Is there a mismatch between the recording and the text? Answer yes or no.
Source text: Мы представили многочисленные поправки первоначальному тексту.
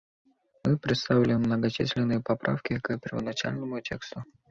yes